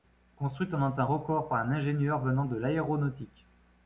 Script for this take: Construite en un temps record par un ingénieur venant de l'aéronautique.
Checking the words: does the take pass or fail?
pass